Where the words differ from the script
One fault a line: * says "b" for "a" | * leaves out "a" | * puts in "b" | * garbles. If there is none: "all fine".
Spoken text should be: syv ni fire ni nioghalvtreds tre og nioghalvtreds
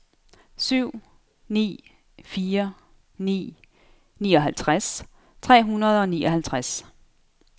* puts in "hundrede"